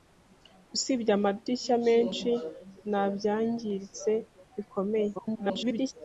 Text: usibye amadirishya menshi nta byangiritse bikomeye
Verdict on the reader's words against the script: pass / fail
fail